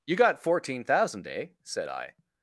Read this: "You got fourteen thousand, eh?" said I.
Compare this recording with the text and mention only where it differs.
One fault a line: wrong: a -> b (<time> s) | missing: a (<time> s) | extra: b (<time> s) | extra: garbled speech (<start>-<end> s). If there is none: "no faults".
no faults